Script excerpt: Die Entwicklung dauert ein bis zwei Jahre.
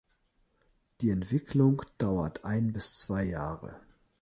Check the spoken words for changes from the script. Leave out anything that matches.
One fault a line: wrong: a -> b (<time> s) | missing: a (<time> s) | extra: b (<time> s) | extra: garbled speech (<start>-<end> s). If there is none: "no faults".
no faults